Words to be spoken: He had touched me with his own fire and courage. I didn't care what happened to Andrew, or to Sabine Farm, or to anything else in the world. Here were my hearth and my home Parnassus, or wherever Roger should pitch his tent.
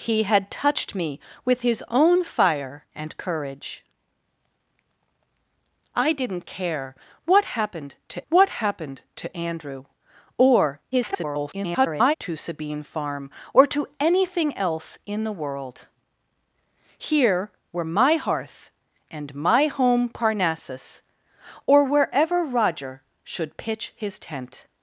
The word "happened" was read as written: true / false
true